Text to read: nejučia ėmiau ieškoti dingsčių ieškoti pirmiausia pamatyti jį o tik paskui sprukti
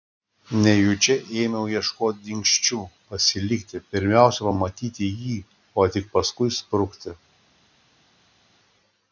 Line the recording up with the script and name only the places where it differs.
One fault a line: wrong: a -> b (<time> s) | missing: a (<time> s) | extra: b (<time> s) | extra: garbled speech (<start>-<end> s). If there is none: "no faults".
wrong: ieškoti -> pasilikti (3.1 s)